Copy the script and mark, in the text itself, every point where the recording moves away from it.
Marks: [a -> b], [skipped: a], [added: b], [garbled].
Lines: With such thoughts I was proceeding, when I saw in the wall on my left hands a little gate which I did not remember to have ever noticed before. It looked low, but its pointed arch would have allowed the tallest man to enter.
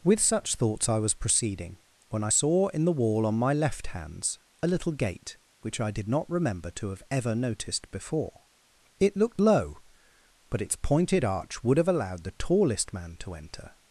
With such thoughts I was proceeding, when I saw in the wall on my left hands a little gate which I did not remember to have ever noticed before. It looked low, but its pointed arch would have allowed the tallest man to enter.